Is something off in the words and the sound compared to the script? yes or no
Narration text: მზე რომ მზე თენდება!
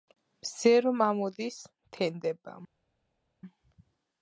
yes